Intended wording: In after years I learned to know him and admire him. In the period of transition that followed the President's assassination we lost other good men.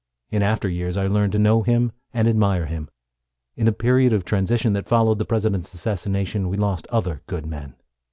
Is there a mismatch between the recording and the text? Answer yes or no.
no